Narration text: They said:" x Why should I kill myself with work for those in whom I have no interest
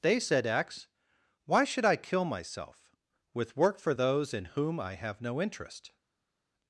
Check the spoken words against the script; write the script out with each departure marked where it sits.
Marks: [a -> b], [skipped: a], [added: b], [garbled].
They said:" x Why should I kill myself with work for those in whom I have no interest